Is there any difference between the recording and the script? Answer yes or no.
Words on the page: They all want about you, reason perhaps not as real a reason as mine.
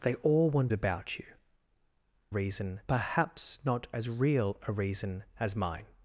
no